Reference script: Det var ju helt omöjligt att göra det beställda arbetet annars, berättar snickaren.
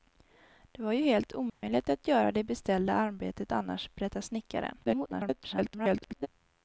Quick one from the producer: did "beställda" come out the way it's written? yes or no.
yes